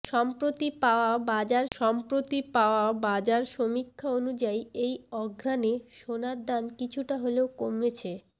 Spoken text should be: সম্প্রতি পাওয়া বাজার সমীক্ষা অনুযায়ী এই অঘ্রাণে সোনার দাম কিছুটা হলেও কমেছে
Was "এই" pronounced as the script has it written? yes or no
yes